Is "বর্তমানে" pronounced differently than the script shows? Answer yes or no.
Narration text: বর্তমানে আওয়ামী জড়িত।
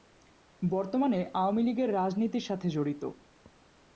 no